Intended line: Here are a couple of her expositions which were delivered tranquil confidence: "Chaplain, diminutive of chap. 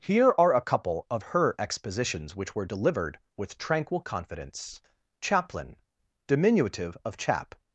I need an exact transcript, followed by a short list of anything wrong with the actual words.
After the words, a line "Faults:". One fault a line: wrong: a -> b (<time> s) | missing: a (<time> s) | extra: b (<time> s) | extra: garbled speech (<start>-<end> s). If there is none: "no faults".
Here are a couple of her expositions which were delivered with tranquil confidence: "Chaplain, diminutive of chap.
Faults:
extra: with (3.4 s)